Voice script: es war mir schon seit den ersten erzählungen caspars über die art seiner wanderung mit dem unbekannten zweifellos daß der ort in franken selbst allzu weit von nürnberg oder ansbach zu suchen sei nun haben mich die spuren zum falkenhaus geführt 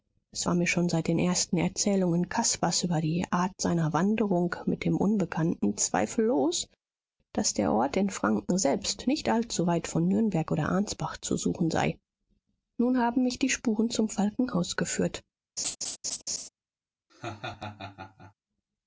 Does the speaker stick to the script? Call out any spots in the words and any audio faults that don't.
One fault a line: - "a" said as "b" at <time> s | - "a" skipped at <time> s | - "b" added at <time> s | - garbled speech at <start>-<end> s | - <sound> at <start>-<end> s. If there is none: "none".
- "nicht" added at 9.1 s
- laugh at 15.6-16.5 s
- laugh at 17.1-18.3 s